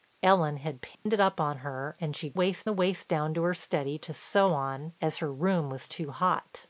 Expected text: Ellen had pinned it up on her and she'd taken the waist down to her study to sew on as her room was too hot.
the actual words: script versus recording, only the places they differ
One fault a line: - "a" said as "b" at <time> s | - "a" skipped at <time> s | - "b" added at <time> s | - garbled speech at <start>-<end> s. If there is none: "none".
- "taken" said as "waist" at 2.3 s